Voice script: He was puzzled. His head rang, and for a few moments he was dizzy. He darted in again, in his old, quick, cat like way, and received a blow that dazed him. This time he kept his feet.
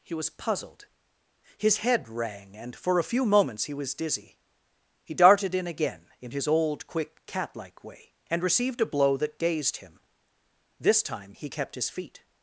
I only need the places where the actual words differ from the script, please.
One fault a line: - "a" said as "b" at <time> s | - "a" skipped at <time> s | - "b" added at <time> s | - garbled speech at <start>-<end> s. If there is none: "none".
none